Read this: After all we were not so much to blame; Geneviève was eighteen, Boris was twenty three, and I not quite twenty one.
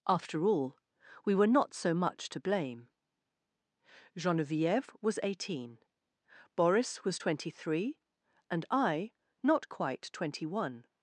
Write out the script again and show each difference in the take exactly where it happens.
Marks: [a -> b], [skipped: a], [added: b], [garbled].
After all we were not so much to blame; Geneviève was eighteen, Boris was twenty three, and I not quite twenty one.